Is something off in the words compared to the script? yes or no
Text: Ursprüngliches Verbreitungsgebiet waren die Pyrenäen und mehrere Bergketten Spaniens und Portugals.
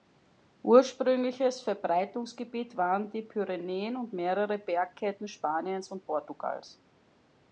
no